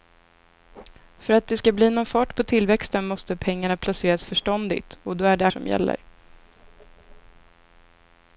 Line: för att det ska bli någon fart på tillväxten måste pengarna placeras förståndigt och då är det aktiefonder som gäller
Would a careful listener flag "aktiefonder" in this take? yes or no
yes